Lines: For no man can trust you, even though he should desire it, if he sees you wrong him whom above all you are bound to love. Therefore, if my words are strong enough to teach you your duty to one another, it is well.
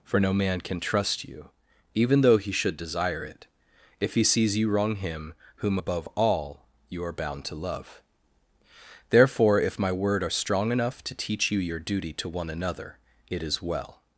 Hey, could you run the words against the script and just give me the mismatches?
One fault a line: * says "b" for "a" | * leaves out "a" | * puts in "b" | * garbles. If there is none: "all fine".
* says "word" for "words"